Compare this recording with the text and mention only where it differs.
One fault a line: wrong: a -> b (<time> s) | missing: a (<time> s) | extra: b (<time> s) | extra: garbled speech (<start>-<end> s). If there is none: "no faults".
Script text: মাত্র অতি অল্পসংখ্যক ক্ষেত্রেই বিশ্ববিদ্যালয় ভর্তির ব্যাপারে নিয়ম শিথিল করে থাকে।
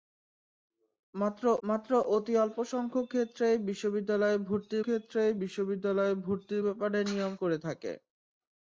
extra: মাত্র (1.6 s)
extra: ক্ষেত্রেই বিশ্ববিদ্যালয় ভর্তির (4.8 s)
missing: শিথিল (7.3 s)